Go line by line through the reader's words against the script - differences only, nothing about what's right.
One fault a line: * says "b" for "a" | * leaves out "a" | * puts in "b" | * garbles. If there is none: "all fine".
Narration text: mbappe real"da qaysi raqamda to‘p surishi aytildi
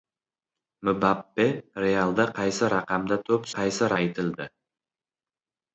* says "qaysi" for "surishi"